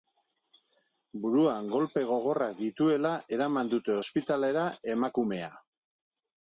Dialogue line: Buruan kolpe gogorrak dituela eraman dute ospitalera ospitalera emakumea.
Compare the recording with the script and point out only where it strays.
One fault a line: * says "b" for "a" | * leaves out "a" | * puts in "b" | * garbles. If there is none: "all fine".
* leaves out "ospitalera"